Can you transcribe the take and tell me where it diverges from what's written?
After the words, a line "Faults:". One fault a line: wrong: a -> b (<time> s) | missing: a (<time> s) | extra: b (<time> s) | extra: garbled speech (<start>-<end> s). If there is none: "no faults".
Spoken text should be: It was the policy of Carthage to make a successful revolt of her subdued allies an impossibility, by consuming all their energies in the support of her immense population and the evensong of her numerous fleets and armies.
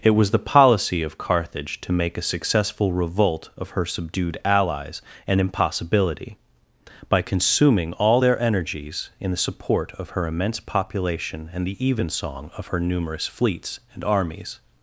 It was the policy of Carthage to make a successful revolt of her subdued allies an impossibility, by consuming all their energies in the support of her immense population and the evensong of her numerous fleets and armies.
Faults:
no faults